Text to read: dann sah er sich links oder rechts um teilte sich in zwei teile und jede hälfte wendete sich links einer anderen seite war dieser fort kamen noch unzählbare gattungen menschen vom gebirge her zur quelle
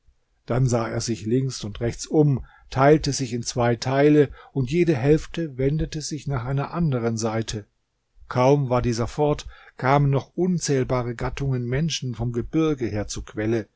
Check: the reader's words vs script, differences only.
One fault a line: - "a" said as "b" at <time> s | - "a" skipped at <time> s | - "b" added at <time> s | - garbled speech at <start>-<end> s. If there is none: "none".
- "oder" said as "und" at 1.6 s
- "links" said as "nach" at 6.3 s
- "kaum" added at 8.3 s